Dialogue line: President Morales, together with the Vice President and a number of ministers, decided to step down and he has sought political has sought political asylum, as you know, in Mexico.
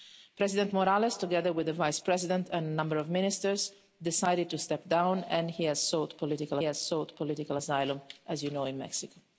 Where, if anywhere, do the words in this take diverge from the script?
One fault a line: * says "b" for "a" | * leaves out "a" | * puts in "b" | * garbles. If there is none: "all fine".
all fine